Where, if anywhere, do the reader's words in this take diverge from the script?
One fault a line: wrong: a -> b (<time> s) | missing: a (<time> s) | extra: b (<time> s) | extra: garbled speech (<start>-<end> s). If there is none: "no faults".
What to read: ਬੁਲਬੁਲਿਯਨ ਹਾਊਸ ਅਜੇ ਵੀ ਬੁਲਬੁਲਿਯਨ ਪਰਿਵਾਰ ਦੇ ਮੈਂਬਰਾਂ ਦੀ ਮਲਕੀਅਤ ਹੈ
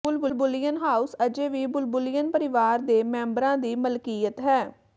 no faults